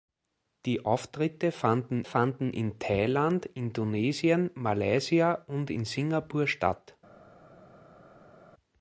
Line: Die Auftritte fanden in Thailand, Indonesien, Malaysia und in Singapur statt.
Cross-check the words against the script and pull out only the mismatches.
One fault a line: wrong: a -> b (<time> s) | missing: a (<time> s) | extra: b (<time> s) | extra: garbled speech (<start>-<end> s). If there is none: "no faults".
extra: fanden (2.0 s)